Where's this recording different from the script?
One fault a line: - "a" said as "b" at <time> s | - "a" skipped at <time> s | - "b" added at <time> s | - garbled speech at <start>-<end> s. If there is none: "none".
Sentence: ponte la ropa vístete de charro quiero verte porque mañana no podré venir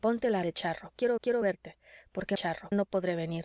- "ropa vístete" skipped at 0.4 s
- "quiero" added at 1.2 s
- "mañana" said as "charro" at 2.3 s